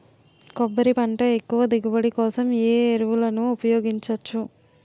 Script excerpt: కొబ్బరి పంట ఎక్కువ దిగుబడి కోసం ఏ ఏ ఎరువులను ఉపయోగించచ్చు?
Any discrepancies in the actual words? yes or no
no